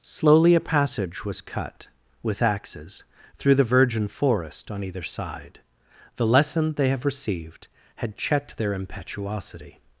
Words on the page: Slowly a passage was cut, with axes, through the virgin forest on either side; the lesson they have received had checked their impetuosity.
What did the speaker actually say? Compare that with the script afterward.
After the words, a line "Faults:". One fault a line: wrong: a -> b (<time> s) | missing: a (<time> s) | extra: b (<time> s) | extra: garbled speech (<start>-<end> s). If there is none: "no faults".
Slowly a passage was cut, with axes, through the virgin forest on either side; the lesson they have received had checked their impetuosity.
Faults:
no faults